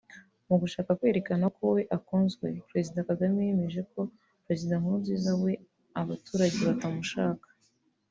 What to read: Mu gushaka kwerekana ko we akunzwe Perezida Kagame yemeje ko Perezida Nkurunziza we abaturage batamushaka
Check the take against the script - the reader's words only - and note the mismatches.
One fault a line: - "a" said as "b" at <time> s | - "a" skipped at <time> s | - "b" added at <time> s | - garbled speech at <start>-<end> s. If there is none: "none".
none